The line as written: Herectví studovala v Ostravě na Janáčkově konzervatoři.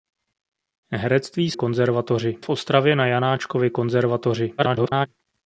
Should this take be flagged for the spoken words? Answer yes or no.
yes